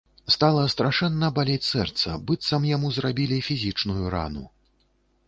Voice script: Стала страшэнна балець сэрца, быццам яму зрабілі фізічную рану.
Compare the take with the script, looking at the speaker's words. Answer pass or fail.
pass